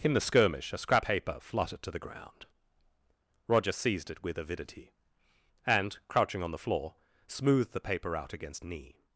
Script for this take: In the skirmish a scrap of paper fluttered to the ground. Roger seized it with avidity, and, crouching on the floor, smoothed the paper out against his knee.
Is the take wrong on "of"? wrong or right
wrong